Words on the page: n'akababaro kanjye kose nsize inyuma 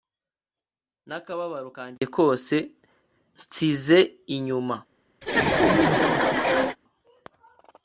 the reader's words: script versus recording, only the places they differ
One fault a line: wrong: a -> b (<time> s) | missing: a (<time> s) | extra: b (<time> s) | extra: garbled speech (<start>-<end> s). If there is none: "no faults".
no faults